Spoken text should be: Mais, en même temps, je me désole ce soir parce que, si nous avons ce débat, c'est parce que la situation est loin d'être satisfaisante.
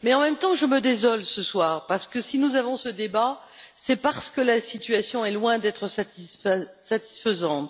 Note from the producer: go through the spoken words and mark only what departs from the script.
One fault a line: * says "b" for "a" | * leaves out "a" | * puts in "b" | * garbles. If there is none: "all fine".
all fine